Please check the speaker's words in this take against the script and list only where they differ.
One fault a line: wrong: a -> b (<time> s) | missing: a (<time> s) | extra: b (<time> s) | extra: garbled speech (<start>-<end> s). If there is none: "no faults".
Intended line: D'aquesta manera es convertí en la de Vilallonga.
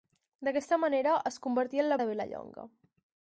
no faults